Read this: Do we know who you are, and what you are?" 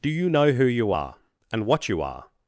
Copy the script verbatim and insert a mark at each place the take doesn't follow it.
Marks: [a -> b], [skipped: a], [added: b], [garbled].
Do [we -> you] know who you are, and what you are?"